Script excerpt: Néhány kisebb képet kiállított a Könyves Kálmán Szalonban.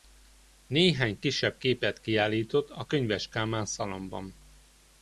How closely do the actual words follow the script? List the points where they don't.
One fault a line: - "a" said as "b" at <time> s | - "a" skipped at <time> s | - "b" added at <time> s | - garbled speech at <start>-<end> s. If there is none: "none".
none